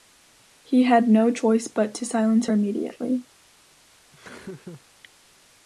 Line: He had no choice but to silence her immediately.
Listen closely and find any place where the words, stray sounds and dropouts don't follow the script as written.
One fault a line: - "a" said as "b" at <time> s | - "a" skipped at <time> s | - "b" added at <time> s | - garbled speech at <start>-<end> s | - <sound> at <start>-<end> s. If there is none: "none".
- laugh at 4.1-4.9 s